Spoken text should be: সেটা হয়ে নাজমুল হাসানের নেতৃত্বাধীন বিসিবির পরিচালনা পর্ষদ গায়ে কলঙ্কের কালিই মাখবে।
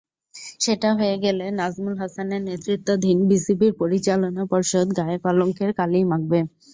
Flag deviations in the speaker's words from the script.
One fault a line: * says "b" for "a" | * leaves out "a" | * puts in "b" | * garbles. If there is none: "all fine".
* puts in "গেলে"